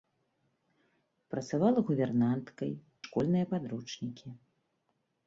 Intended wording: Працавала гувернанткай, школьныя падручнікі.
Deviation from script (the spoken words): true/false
false